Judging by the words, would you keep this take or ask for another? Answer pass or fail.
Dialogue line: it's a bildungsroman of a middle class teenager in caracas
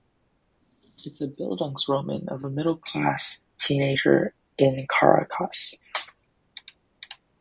pass